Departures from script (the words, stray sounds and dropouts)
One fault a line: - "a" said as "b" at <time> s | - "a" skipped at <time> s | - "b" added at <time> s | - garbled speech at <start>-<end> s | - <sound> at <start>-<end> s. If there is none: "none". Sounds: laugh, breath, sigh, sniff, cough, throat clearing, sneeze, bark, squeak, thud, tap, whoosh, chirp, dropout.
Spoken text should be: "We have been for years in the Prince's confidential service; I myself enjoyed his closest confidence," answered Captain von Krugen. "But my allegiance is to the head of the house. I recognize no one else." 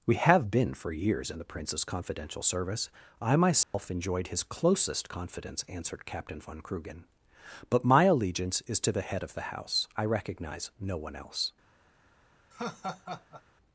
- dropout at 3.6-3.7 s
- laugh at 12.5-13.4 s